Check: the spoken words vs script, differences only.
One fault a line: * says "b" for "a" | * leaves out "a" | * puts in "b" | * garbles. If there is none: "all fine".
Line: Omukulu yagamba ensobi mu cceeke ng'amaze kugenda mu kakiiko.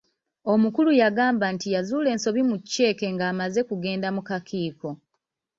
* puts in "nti yazuula"